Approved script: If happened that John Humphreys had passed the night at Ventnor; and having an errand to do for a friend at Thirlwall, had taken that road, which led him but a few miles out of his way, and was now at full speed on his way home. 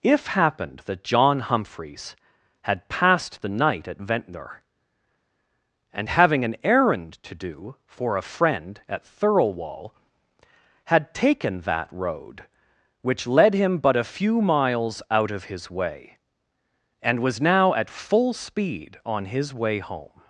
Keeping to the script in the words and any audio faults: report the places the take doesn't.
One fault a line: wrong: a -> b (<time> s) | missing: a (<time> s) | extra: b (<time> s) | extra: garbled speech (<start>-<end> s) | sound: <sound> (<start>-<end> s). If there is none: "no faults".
no faults